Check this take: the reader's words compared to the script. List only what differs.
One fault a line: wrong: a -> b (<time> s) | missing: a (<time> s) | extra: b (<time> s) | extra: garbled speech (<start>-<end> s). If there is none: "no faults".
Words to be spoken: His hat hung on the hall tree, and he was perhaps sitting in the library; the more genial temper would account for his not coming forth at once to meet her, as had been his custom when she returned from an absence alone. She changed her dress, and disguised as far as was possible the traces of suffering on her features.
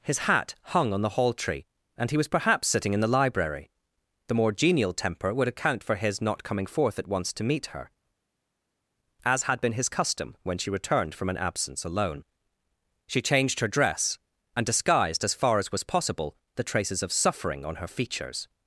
no faults